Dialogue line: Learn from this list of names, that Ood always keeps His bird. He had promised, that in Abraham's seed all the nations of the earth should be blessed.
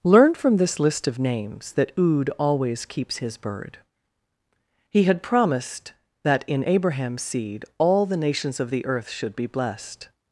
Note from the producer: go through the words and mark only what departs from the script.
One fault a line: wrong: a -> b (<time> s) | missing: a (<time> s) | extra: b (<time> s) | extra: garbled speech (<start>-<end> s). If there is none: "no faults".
no faults